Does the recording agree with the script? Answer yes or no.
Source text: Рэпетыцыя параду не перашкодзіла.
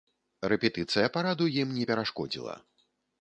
no